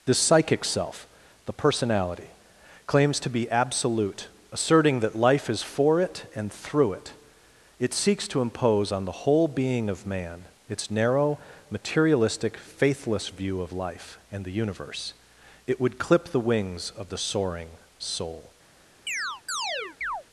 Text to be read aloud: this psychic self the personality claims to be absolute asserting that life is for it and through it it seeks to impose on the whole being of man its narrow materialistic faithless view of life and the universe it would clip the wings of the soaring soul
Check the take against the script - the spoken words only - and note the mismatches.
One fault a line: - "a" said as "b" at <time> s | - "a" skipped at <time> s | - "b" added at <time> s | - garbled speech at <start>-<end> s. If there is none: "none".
none